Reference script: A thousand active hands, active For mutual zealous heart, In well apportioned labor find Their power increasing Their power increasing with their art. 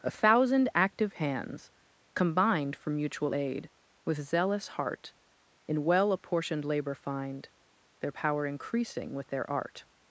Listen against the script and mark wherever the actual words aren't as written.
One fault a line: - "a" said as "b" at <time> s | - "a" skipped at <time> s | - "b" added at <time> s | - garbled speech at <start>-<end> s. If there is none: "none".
- "active" said as "combined" at 2.1 s
- "aid with" added at 3.3 s
- "Their power increasing" skipped at 9.1 s